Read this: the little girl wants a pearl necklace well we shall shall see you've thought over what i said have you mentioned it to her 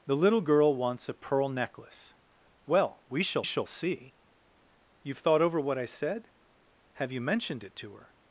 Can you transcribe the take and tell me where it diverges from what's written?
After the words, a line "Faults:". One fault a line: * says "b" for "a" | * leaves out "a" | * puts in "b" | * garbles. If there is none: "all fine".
the little girl wants a pearl necklace well we shall shall see you've thought over what i said have you mentioned it to her
Faults:
all fine